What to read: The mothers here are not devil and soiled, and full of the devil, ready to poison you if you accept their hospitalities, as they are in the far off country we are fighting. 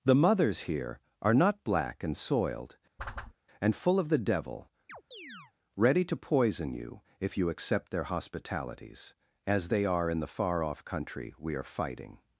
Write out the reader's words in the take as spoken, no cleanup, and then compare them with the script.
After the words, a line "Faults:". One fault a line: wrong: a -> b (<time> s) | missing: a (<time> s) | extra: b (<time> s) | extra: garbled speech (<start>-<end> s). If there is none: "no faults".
The mothers here are not black and soiled, and full of the devil, ready to poison you if you accept their hospitalities, as they are in the far off country we are fighting.
Faults:
wrong: devil -> black (1.6 s)